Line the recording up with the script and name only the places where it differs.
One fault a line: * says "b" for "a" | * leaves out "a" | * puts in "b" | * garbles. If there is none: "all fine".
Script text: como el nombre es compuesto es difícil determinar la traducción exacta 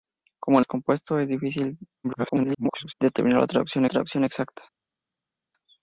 * leaves out "nombre"
* garbles
* puts in "traducción"